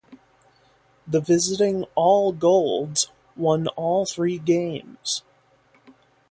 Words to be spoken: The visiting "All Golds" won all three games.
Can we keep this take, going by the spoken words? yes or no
yes